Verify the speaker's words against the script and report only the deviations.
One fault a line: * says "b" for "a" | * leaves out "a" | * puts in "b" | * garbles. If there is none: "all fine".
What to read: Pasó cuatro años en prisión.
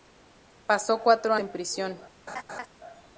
* leaves out "años"